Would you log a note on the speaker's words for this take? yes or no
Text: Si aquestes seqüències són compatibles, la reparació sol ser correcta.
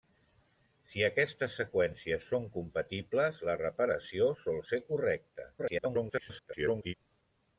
yes